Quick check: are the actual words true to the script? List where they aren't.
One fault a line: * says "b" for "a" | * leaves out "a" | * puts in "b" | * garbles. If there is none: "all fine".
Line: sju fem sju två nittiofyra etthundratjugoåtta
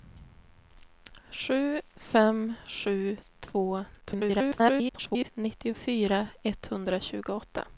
* garbles